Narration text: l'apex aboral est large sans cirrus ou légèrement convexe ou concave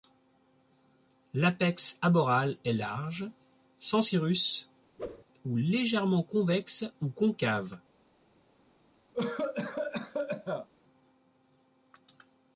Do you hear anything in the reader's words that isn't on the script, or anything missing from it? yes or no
no